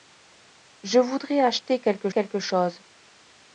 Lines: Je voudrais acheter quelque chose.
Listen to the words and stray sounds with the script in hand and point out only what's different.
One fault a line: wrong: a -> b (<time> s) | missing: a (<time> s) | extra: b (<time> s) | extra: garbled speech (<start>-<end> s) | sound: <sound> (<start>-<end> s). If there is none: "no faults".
extra: quelque (2.1 s)